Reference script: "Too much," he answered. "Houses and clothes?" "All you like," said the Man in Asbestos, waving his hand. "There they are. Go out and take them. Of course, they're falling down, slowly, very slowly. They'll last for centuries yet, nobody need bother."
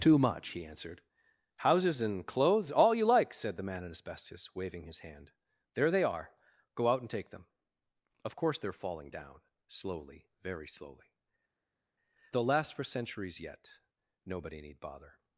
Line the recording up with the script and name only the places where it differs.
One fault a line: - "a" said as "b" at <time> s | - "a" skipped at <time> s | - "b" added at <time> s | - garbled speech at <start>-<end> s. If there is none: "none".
none